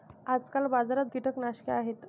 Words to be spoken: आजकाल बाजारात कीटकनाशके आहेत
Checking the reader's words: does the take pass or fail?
pass